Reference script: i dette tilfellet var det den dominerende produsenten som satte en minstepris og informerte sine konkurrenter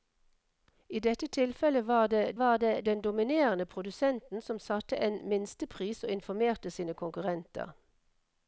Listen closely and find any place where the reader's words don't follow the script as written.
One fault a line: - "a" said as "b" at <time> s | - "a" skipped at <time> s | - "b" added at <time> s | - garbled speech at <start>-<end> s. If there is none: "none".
- "var det" added at 2.4 s